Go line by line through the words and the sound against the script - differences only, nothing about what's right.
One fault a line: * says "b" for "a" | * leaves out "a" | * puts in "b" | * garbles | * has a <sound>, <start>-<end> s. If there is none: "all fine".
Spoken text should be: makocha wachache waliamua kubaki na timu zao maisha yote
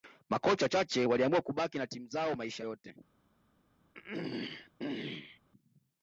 * has a throat clearing, 3.9-5.4 s